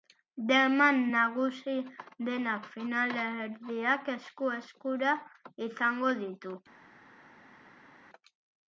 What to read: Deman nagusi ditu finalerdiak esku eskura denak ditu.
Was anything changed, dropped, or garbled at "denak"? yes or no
yes